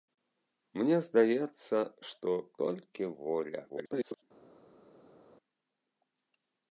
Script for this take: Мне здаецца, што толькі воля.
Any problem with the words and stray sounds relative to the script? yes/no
yes